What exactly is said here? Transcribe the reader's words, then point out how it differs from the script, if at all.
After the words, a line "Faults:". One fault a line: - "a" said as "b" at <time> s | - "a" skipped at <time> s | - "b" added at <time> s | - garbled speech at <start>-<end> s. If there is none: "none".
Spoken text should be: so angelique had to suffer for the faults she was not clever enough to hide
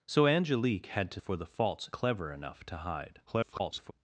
so angelique had to for the faults clever enough to hide [garbled]
Faults:
- "suffer" skipped at 1.2 s
- "she was not" skipped at 1.9 s
- garbled speech at 3.3-3.9 s